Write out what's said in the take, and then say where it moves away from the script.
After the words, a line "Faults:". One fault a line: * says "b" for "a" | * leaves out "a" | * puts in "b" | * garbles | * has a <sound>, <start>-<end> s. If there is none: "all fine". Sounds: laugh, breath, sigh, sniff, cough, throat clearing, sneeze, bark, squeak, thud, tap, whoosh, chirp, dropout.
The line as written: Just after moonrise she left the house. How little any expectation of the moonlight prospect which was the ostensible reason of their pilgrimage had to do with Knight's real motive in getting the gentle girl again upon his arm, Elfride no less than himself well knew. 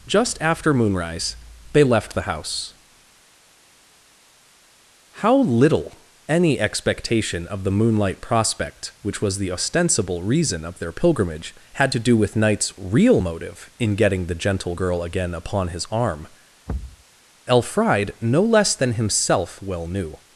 Just after moonrise they left the house. How little any expectation of the moonlight prospect which was the ostensible reason of their pilgrimage had to do with Knight's real motive in getting the gentle girl again upon his arm, Elfride no less than himself well knew.
Faults:
* says "they" for "she"
* has a thud, 16.7-17.0 s